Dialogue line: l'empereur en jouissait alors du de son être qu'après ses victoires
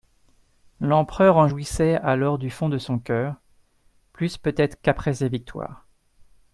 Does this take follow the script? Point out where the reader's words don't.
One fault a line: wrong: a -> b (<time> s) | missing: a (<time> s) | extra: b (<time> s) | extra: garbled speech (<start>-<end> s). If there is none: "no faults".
extra: fond (2.5 s)
extra: cœur plus peut (3.0 s)